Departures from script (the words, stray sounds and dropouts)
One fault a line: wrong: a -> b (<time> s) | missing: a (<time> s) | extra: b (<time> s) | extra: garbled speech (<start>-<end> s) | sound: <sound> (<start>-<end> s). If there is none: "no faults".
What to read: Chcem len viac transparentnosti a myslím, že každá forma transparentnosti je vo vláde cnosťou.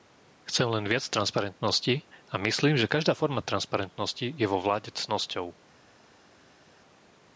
no faults